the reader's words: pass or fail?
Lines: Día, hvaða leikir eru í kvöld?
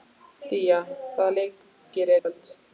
fail